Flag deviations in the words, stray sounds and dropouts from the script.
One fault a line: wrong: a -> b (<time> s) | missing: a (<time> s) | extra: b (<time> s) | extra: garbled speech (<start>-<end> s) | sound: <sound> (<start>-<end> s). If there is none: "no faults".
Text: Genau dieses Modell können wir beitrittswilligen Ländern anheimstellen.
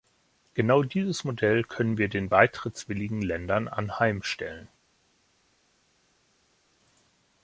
extra: den (2.1 s)